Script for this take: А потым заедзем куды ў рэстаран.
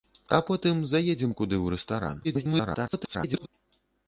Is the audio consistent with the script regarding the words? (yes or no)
no